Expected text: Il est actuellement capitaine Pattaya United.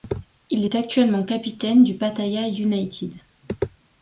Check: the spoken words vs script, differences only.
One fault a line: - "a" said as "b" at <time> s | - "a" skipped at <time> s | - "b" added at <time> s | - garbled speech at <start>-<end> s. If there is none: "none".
- "du" added at 1.8 s